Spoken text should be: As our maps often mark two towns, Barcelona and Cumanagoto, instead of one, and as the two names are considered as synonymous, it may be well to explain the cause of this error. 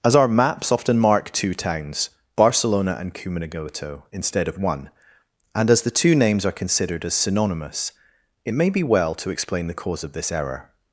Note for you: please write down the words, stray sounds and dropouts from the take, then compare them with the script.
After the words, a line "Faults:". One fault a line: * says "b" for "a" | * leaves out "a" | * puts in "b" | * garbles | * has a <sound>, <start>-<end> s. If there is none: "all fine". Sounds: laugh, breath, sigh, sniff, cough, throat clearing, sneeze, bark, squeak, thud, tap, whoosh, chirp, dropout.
As our maps often mark two towns, Barcelona and Cumanagoto, instead of one, and as the two names are considered as synonymous, it may be well to explain the cause of this error.
Faults:
all fine